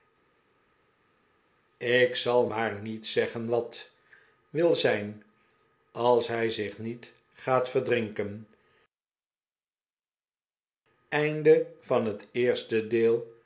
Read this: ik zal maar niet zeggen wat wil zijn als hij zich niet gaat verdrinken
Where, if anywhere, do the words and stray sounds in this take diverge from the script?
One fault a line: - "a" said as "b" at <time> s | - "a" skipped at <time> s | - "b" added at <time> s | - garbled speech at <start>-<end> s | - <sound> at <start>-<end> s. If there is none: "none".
none